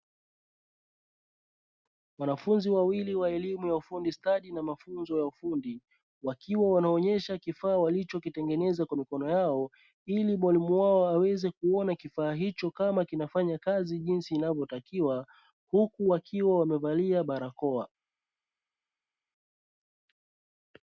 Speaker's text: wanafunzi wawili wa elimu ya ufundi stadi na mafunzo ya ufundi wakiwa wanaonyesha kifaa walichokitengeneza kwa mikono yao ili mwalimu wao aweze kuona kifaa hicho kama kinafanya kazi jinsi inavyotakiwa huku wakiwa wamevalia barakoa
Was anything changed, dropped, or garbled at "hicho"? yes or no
no